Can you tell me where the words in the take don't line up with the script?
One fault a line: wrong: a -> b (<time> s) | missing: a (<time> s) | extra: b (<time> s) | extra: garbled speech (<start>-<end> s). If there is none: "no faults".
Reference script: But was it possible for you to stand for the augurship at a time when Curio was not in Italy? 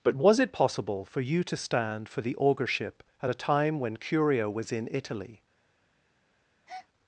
missing: not (4.7 s)